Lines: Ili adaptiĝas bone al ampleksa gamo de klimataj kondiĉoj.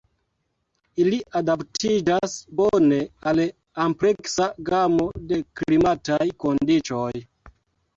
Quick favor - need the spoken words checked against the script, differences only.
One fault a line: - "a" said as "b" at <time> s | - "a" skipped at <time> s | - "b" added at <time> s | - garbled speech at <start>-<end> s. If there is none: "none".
none